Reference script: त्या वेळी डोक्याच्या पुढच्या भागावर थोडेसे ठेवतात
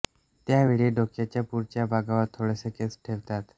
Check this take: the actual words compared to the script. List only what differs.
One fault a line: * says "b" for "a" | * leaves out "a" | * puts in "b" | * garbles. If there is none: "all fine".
* puts in "केस"